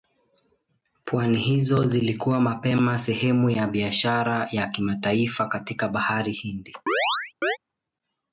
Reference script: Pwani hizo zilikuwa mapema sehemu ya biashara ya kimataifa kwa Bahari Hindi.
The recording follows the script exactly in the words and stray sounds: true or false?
false